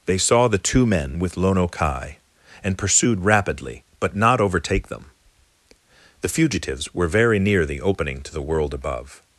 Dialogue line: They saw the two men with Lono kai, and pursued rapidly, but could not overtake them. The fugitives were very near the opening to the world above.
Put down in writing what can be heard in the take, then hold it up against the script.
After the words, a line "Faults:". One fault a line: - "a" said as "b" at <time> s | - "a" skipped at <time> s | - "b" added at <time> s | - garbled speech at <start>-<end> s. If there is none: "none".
They saw the two men with Lono kai, and pursued rapidly, but not overtake them. The fugitives were very near the opening to the world above.
Faults:
- "could" skipped at 4.2 s